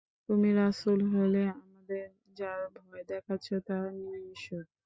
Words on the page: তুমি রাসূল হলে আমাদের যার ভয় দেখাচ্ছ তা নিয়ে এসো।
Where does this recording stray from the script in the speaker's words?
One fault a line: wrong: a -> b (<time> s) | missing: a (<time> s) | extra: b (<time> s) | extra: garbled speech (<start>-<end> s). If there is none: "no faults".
no faults